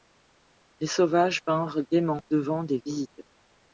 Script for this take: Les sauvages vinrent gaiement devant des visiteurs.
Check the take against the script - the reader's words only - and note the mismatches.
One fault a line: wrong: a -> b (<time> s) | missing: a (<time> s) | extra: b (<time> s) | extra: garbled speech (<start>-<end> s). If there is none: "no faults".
no faults